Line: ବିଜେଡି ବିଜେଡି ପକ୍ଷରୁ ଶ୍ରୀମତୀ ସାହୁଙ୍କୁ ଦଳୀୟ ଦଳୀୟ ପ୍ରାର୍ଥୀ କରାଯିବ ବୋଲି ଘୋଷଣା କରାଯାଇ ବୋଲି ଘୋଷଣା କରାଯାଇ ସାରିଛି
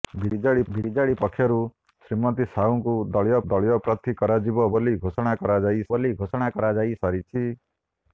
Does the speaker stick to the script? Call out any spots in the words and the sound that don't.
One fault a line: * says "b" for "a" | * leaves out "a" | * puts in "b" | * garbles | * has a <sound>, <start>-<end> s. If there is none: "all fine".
all fine